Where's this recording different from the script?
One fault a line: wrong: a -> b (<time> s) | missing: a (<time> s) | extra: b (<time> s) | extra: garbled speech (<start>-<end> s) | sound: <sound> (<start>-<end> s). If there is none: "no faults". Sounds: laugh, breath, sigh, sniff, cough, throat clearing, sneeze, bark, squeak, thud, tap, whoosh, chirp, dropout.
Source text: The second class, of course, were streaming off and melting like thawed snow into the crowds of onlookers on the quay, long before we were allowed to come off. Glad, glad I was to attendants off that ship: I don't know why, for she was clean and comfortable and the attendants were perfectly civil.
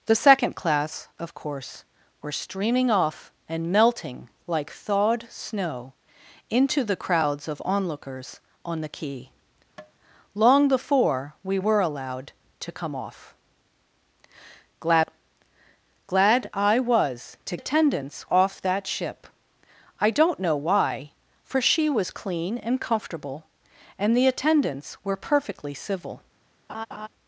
sound: tap (9.8-9.9 s)
sound: laugh (26.7-27.1 s)